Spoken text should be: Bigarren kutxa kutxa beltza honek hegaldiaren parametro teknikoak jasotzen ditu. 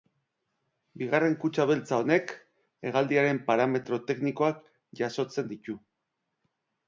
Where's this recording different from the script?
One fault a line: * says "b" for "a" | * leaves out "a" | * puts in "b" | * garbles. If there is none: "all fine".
* leaves out "kutxa"